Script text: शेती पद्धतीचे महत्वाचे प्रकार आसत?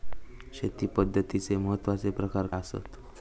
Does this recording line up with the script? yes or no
yes